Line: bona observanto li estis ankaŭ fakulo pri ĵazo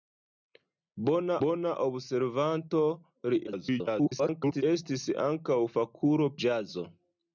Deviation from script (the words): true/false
true